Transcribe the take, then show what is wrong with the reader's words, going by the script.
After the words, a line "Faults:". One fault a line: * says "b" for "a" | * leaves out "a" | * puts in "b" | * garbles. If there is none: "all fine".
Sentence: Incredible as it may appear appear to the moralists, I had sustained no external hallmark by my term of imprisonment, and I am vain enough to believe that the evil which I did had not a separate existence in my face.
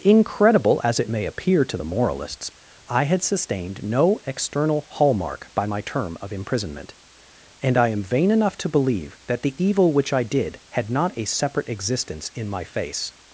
Incredible as it may appear to the moralists, I had sustained no external hallmark by my term of imprisonment, and I am vain enough to believe that the evil which I did had not a separate existence in my face.
Faults:
* leaves out "appear"